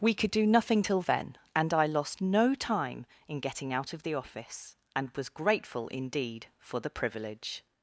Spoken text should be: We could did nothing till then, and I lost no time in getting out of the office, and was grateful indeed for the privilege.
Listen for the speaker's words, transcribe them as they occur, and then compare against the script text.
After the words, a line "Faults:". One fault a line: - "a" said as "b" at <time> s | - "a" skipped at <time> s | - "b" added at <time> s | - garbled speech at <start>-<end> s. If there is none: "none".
We could do nothing till then, and I lost no time in getting out of the office, and was grateful indeed for the privilege.
Faults:
- "did" said as "do" at 0.3 s